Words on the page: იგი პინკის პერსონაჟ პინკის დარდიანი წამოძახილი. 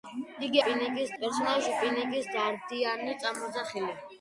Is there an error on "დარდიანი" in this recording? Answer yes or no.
no